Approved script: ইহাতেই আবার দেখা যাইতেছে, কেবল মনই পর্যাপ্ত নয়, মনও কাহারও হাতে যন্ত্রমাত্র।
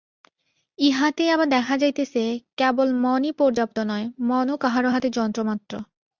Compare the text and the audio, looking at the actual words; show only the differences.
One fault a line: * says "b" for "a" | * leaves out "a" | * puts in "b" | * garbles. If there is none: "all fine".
all fine